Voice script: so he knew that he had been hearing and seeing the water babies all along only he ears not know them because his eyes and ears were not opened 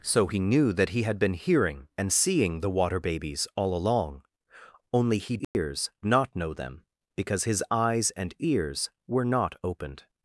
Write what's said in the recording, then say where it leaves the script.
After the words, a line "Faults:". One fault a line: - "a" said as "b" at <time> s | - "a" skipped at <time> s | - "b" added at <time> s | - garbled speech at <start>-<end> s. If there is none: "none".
so he knew that he had been hearing and seeing the water babies all along only he ears not know them because his eyes and ears were not opened
Faults:
none